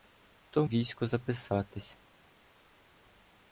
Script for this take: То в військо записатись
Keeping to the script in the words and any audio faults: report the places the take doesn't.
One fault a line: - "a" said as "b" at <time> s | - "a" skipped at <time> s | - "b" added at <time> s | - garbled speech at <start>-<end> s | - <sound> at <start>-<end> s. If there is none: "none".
none